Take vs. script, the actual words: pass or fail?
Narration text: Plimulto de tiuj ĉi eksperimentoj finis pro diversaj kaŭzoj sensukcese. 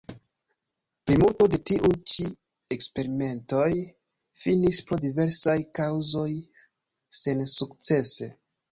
pass